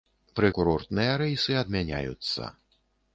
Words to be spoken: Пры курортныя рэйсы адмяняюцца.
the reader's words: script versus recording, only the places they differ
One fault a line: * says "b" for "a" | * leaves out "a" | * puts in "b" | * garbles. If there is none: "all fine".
all fine